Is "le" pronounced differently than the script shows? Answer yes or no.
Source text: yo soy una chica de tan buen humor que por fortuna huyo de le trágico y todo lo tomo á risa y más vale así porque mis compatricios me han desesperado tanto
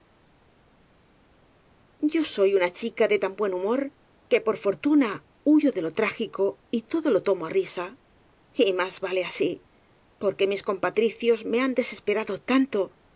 yes